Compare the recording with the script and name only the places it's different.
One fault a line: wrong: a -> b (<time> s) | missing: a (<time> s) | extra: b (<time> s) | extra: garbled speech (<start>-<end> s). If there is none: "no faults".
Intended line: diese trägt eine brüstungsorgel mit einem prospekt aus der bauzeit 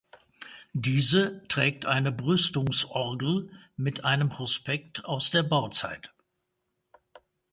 no faults